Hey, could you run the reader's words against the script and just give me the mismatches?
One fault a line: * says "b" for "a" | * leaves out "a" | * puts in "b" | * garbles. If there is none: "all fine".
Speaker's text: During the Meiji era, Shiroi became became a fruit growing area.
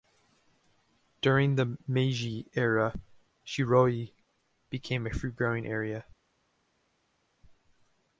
* leaves out "became"